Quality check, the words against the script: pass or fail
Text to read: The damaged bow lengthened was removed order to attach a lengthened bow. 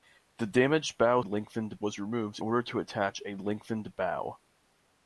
pass